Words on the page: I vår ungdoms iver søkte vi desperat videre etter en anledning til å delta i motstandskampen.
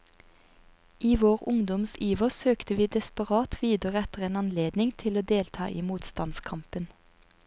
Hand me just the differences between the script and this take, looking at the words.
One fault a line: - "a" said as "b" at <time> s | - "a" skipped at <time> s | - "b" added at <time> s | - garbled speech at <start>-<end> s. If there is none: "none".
none